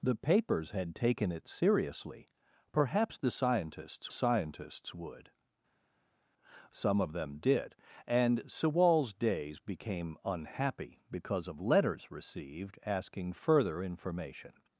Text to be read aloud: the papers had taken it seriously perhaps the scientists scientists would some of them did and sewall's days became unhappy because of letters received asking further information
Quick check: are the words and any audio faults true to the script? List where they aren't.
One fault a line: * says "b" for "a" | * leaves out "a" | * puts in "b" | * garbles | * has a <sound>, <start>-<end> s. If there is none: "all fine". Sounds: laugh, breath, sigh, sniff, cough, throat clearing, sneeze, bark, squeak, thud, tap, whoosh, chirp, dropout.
all fine